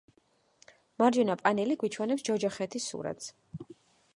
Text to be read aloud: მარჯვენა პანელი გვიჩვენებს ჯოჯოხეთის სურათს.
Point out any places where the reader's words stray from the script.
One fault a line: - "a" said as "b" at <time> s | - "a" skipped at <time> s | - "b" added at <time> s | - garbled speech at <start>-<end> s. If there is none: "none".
none